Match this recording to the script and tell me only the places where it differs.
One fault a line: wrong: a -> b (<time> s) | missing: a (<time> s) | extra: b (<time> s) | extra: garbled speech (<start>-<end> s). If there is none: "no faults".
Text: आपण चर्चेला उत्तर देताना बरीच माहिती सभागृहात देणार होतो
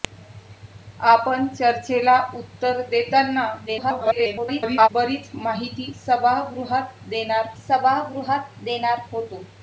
extra: garbled speech (3.7-4.9 s)
extra: सभागृहात देणार (7.6 s)